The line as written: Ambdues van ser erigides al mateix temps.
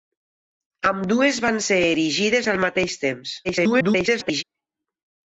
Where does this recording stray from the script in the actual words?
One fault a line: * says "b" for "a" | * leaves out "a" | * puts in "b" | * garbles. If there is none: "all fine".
* garbles